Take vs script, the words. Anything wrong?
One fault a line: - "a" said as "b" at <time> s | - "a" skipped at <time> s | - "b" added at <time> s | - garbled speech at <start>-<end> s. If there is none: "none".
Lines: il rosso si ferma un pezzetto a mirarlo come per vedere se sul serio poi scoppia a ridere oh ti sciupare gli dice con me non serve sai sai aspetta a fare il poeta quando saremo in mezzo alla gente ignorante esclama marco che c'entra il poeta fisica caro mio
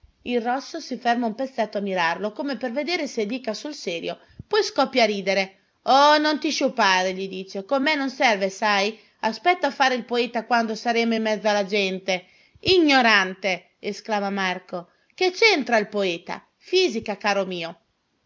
- "dica" added at 3.3 s
- "non" added at 6.2 s
- "sai" skipped at 9.0 s